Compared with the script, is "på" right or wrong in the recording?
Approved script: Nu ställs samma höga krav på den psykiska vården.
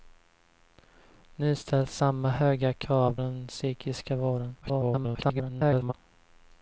wrong